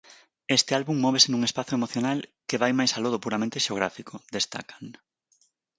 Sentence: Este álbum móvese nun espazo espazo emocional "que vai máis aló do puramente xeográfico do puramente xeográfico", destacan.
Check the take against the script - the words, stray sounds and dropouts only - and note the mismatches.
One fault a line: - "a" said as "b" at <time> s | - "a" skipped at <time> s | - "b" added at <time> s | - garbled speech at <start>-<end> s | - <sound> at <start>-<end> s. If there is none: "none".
- "espazo" skipped at 1.7 s
- "do puramente xeográfico" skipped at 4.1 s